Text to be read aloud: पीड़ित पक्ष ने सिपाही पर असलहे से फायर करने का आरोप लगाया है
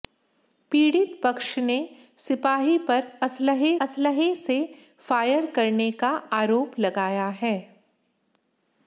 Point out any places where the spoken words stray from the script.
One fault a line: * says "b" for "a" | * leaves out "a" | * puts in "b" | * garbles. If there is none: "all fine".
* puts in "असलहे"